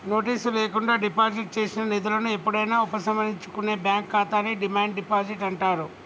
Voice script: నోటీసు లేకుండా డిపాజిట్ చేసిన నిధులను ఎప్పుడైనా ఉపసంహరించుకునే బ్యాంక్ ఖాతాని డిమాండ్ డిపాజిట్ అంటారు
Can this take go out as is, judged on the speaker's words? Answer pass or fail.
pass